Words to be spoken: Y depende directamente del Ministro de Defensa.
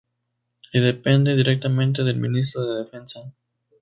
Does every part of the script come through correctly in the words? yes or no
yes